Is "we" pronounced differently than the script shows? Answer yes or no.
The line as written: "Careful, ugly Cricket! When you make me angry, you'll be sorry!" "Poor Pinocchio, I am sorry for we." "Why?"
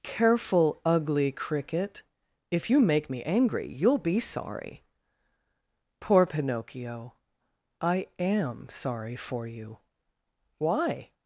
yes